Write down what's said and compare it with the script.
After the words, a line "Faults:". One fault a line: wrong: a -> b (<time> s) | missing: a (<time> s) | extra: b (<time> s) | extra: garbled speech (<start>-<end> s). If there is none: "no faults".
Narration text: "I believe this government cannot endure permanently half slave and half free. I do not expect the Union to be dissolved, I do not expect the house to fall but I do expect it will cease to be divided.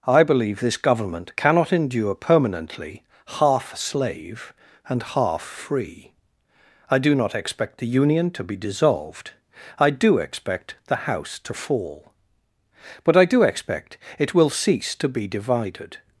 "I believe this government cannot endure permanently half slave and half free. I do not expect the Union to be dissolved, I do expect the house to fall but I do expect it will cease to be divided.
Faults:
missing: not (10.2 s)